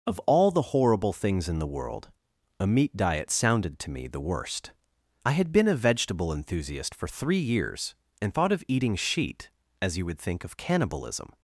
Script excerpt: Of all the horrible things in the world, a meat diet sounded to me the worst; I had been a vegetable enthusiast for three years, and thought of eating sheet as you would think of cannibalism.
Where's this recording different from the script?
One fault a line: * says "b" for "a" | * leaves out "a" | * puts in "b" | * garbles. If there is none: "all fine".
all fine